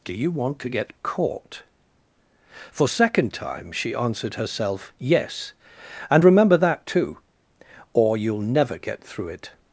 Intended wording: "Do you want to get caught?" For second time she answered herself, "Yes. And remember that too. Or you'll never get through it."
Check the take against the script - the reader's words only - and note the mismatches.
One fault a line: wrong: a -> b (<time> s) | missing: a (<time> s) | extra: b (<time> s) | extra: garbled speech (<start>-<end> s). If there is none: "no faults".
no faults